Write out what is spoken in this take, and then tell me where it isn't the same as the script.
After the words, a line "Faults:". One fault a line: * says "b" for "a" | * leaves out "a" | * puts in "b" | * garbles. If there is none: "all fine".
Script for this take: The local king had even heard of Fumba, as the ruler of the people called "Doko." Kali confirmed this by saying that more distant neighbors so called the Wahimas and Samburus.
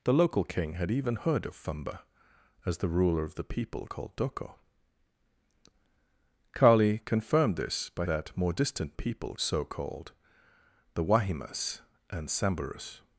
The local king had even heard of Fumba, as the ruler of the people called "Doko." Kali confirmed this by that more distant people so called the Wahimas and Samburus.
Faults:
* leaves out "saying"
* says "people" for "neighbors"